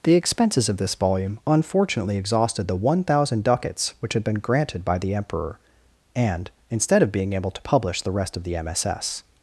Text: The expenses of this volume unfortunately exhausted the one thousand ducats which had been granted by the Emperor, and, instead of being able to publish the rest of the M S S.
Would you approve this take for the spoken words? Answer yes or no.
yes